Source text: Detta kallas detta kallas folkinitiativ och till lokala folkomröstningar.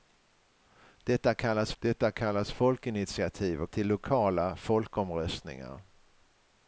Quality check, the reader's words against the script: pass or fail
pass